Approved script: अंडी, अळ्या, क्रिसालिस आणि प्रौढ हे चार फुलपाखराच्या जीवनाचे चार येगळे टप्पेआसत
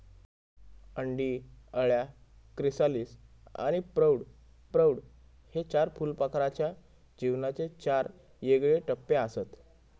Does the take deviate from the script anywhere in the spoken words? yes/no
yes